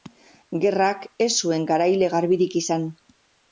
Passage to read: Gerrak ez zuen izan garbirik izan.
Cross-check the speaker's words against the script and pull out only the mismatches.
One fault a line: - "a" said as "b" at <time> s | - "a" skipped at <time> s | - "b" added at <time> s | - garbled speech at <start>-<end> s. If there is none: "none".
- "izan" said as "garaile" at 1.8 s